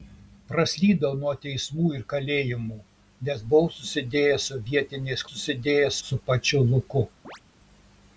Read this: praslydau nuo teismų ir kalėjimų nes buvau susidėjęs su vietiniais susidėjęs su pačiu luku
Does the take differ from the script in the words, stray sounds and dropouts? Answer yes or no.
yes